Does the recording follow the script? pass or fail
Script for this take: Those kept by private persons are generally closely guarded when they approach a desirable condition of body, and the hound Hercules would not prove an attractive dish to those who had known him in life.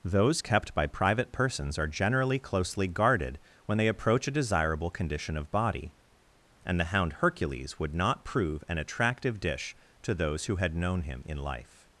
pass